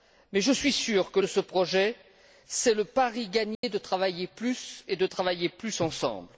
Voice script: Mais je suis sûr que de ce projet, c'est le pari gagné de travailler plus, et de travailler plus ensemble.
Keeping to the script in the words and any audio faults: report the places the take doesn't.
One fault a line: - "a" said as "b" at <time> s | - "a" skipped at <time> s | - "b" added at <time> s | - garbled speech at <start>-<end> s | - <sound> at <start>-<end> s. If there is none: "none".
- dropout at 3.5-3.6 s